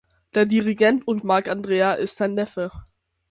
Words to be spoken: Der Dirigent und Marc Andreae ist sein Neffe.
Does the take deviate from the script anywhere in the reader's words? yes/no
no